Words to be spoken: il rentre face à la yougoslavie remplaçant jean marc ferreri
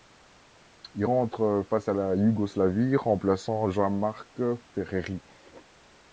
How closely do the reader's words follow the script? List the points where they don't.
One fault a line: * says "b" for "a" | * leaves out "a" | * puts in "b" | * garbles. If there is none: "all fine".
all fine